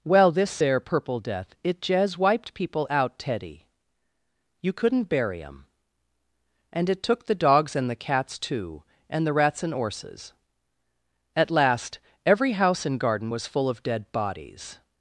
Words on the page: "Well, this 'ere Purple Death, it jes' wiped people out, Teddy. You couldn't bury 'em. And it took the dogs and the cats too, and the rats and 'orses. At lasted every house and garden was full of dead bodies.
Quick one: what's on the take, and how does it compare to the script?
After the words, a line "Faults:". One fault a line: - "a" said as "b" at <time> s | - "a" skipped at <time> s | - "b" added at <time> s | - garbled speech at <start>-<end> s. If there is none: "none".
"Well, this 'ere Purple Death, it jes' wiped people out, Teddy. You couldn't bury 'em. And it took the dogs and the cats too, and the rats and 'orses. At last every house and garden was full of dead bodies.
Faults:
- "lasted" said as "last" at 11.5 s